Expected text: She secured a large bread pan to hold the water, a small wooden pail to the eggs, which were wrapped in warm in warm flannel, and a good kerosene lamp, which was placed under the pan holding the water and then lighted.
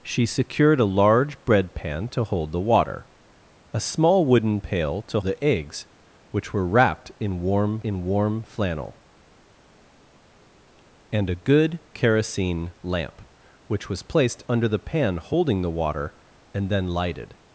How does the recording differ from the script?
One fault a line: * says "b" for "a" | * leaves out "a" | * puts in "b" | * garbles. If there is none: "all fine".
all fine